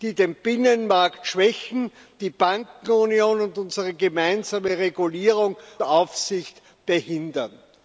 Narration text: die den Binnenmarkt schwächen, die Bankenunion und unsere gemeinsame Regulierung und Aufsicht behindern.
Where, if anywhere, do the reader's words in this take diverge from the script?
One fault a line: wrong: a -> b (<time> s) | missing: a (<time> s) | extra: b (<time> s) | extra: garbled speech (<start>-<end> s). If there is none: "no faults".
missing: und (5.6 s)